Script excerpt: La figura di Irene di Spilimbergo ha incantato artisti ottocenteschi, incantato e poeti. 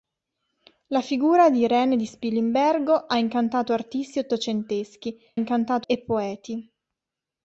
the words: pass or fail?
pass